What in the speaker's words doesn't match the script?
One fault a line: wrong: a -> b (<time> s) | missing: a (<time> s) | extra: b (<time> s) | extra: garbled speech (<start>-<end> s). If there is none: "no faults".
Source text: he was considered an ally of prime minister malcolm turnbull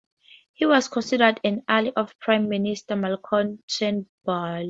no faults